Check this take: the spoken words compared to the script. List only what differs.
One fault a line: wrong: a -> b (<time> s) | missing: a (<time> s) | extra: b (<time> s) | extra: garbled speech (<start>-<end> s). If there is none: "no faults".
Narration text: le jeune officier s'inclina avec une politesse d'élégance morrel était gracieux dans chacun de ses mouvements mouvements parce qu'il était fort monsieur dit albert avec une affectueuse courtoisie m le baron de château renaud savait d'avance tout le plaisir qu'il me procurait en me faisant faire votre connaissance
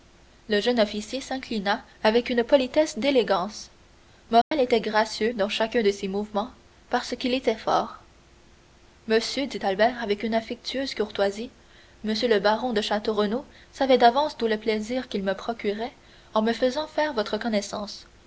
missing: mouvements (6.5 s)